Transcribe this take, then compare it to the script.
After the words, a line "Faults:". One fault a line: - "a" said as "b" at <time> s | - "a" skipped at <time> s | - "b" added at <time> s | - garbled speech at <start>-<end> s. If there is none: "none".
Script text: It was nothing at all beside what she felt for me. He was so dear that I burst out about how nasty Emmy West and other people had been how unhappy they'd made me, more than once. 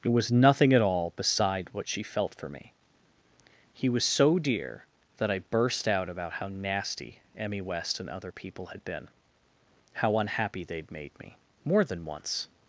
It was nothing at all beside what she felt for me. He was so dear that I burst out about how nasty Emmy West and other people had been how unhappy they'd made me, more than once.
Faults:
none